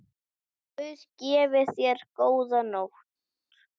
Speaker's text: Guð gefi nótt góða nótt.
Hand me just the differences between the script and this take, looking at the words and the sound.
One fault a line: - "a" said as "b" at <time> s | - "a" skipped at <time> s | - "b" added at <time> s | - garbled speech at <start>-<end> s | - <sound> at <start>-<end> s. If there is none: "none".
- "nótt" said as "þér" at 1.7 s